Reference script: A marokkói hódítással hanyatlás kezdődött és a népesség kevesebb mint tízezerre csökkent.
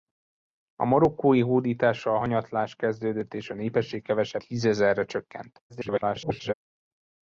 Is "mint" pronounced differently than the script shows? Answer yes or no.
yes